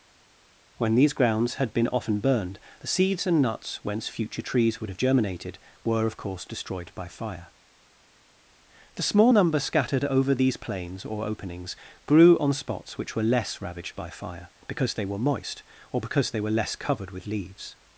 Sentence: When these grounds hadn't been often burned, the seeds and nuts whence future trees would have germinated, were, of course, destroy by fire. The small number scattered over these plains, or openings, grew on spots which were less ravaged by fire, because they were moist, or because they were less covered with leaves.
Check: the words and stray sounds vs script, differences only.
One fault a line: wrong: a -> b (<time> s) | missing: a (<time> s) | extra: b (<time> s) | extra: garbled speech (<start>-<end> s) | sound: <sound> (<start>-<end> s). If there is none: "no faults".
wrong: hadn't -> had (1.5 s)
wrong: destroy -> destroyed (6.4 s)